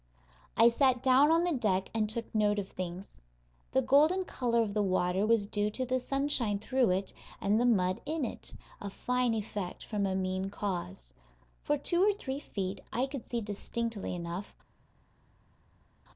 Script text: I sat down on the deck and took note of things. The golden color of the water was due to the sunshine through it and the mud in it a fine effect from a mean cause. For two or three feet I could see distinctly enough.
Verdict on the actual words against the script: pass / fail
pass